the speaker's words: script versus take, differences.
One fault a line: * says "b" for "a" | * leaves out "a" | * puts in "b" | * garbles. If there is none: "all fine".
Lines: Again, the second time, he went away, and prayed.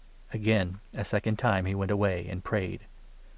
* says "a" for "the"